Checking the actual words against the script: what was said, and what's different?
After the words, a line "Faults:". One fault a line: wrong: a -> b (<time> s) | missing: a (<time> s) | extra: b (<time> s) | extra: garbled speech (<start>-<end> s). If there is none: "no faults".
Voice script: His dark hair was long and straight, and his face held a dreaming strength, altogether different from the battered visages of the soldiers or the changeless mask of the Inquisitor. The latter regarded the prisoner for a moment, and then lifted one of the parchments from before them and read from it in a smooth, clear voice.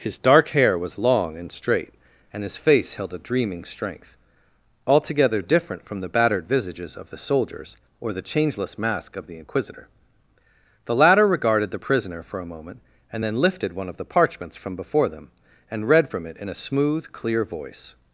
His dark hair was long and straight, and his face held a dreaming strength, altogether different from the battered visages of the soldiers or the changeless mask of the Inquisitor. The latter regarded the prisoner for a moment, and then lifted one of the parchments from before them and read from it in a smooth, clear voice.
Faults:
no faults